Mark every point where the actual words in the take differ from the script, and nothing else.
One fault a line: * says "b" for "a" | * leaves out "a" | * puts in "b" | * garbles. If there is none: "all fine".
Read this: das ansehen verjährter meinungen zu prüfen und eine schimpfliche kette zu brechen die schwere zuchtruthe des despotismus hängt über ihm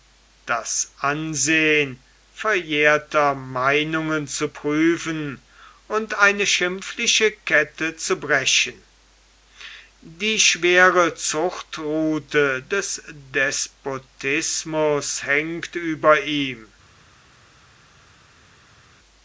all fine